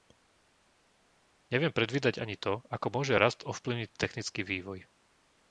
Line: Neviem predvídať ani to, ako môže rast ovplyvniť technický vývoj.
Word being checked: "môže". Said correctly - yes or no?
yes